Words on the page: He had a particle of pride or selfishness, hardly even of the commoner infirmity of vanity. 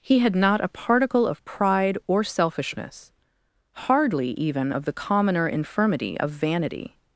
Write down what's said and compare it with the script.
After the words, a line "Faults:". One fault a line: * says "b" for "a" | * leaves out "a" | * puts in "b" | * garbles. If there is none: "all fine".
He had not a particle of pride or selfishness, hardly even of the commoner infirmity of vanity.
Faults:
* puts in "not"